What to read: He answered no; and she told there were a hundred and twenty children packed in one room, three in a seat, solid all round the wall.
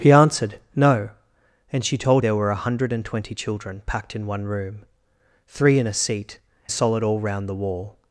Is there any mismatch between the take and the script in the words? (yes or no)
no